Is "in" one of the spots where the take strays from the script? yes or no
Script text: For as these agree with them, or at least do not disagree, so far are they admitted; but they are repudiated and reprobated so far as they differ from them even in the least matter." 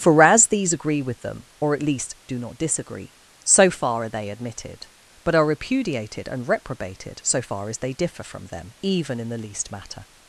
no